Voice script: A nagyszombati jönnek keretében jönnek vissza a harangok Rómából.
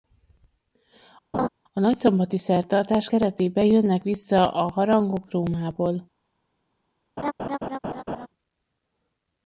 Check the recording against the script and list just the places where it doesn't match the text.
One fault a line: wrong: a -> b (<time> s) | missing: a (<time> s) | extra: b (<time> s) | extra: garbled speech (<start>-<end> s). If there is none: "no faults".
wrong: jönnek -> szertartás (2.4 s)